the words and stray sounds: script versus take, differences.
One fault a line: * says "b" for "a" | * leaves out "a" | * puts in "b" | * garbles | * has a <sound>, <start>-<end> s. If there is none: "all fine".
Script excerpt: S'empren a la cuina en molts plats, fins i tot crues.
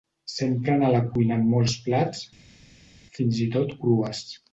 all fine